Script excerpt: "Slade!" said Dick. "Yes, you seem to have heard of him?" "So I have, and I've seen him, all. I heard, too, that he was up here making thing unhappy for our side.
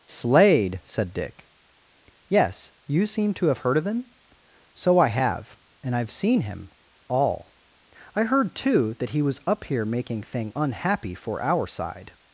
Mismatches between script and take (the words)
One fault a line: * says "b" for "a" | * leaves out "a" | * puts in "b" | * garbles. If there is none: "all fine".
all fine